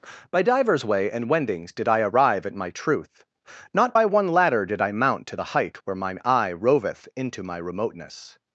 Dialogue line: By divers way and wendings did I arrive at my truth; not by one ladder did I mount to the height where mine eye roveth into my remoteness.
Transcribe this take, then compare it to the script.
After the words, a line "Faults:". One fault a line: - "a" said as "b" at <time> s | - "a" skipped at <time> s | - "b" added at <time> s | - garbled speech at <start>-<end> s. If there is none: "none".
By divers way and wendings did I arrive at my truth; not by one ladder did I mount to the height where mine eye roveth into my remoteness.
Faults:
none